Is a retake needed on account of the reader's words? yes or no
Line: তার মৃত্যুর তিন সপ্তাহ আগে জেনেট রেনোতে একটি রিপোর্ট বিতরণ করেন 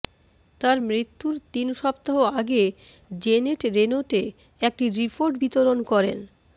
no